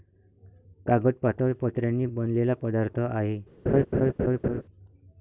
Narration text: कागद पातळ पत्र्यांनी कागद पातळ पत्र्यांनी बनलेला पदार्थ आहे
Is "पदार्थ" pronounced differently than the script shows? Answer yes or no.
no